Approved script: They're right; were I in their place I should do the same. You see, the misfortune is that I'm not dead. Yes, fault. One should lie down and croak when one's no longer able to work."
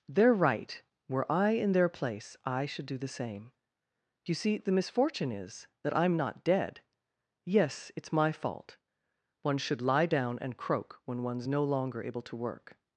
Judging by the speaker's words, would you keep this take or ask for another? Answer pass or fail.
fail